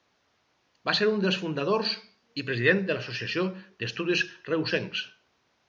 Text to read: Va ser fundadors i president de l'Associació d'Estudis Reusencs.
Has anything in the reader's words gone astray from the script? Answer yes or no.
yes